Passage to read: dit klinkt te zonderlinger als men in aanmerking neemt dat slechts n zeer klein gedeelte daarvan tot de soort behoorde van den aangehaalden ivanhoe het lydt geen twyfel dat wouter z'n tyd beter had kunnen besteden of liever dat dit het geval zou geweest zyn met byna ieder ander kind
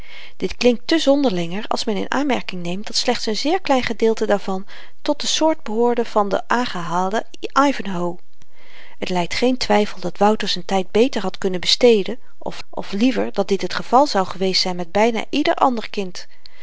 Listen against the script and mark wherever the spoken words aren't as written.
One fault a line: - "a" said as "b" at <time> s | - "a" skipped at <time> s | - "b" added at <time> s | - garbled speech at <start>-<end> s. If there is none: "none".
- "of" added at 12.7 s